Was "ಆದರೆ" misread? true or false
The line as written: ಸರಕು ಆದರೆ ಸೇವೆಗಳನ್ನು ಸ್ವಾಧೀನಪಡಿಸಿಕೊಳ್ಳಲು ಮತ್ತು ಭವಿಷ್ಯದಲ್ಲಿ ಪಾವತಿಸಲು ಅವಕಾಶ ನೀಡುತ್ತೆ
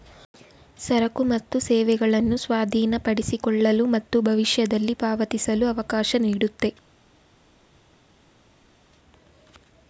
true